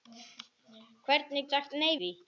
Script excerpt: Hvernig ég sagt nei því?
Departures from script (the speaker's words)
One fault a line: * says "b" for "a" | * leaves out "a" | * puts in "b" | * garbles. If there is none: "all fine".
all fine